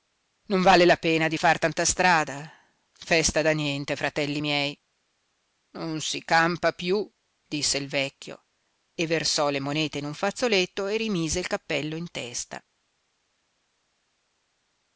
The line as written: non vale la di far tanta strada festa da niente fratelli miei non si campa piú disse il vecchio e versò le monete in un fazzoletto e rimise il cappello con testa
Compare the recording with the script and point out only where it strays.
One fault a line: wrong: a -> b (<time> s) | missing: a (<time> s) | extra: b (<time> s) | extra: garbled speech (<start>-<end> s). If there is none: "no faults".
extra: pena (1.0 s)
wrong: con -> in (11.9 s)